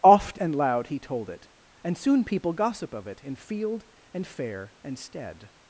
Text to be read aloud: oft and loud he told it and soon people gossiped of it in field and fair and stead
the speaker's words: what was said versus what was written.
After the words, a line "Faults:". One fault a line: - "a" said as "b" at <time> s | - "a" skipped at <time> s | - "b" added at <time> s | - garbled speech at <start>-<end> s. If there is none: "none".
oft and loud he told it and soon people gossip of it in field and fair and stead
Faults:
- "gossiped" said as "gossip" at 2.5 s